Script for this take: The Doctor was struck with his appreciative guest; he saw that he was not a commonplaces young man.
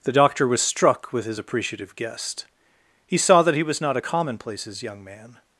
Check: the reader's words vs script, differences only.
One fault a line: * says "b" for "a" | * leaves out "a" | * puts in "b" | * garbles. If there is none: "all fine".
all fine